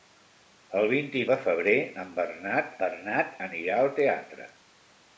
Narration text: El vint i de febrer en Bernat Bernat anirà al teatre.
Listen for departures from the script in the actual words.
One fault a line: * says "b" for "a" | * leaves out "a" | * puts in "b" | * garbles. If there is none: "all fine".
all fine